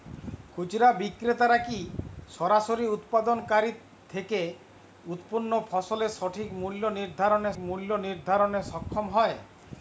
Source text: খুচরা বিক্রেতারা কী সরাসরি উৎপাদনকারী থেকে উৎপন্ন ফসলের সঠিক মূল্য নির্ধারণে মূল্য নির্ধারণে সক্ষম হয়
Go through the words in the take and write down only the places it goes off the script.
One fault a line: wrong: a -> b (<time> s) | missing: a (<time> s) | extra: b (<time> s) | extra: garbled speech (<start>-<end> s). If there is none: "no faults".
no faults